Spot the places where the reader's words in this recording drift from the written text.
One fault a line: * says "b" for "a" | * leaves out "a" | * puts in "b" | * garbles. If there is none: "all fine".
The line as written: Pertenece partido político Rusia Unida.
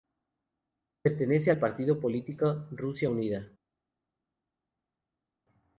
* puts in "al"